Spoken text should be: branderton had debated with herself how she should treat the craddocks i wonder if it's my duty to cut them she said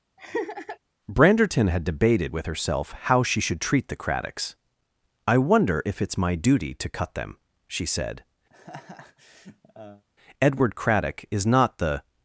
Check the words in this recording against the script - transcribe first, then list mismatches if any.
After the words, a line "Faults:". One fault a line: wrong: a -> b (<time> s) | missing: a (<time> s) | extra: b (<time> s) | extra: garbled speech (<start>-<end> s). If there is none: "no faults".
branderton had debated with herself how she should treat the craddocks i wonder if it's my duty to cut them she said edward craddock is not the
Faults:
extra: edward craddock is not the (10.4 s)